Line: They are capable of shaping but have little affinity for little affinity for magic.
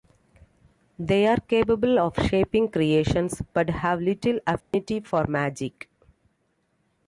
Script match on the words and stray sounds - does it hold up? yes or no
no